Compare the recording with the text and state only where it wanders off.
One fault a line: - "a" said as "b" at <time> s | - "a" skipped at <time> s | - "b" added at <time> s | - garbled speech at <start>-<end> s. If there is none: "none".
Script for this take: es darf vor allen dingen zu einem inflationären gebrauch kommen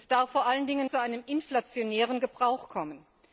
none